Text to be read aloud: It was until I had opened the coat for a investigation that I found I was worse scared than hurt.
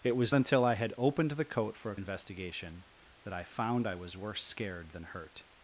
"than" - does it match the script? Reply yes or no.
yes